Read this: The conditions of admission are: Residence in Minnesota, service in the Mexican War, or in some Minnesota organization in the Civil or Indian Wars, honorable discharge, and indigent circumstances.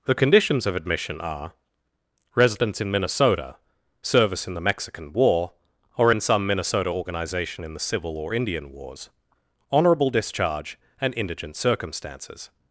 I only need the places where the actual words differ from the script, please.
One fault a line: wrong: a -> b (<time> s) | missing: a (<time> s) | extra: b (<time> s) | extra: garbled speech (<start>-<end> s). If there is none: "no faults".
no faults